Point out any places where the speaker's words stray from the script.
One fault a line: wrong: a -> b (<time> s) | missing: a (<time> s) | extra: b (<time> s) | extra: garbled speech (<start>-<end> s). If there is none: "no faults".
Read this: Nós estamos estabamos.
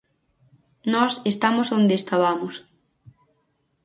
extra: onde (1.8 s)